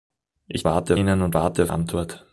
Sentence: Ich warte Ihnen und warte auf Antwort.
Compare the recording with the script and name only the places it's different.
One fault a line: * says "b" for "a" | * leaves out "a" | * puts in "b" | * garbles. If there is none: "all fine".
all fine